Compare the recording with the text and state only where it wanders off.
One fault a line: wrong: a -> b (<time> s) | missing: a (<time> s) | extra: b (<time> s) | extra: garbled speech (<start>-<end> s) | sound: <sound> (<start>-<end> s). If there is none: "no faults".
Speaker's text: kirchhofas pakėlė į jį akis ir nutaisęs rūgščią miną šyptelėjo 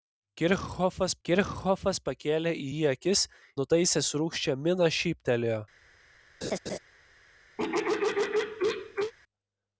extra: kirchhofas (1.3 s)
missing: ir (3.2 s)
sound: laugh (6.4-6.8 s)
sound: throat clearing (7.6-9.1 s)